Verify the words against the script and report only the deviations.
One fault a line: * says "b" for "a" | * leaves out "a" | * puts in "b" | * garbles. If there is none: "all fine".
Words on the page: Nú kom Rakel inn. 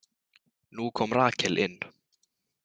all fine